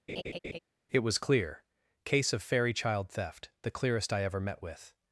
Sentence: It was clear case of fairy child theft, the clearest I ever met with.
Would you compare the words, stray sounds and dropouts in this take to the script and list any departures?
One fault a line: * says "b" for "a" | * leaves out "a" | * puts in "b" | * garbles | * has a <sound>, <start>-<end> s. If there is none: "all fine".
* has a laugh, 0.1-0.6 s